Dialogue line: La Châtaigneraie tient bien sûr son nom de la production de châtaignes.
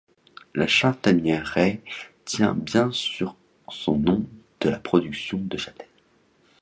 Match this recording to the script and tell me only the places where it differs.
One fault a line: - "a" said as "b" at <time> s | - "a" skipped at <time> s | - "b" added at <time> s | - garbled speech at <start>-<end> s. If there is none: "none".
none